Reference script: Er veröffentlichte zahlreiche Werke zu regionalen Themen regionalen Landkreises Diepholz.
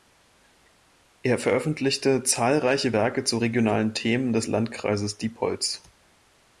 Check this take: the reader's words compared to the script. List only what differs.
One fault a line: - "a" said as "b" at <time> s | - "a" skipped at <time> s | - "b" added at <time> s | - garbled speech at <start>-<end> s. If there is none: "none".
- "regionalen" said as "des" at 4.3 s